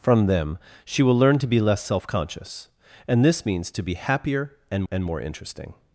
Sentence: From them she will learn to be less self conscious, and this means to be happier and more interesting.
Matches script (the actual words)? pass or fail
fail